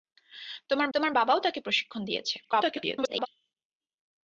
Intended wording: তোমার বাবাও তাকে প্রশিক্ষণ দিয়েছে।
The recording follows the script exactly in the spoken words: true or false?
false